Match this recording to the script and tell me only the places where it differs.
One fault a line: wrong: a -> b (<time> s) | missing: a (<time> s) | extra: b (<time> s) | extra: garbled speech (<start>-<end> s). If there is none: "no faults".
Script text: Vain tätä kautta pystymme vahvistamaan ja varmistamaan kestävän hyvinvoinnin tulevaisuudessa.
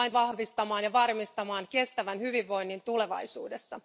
missing: tätä kautta pystymme (0.1 s)